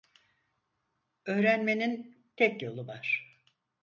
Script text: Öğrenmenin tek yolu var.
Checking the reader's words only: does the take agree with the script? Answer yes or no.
yes